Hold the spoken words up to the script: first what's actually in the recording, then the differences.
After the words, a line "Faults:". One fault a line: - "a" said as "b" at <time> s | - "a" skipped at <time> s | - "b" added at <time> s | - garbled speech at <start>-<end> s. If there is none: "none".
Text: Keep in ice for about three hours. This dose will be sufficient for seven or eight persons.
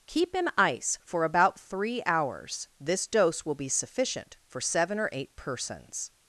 Keep in ice for about three hours. This dose will be sufficient for seven or eight persons.
Faults:
none